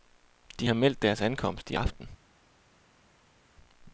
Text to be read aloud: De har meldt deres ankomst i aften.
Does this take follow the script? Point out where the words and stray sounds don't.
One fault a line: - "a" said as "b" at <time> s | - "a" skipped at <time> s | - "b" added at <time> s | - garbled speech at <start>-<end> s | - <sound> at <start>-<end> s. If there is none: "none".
none